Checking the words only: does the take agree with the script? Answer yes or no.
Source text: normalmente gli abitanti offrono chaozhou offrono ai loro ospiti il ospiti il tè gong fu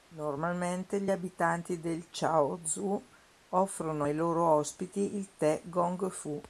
no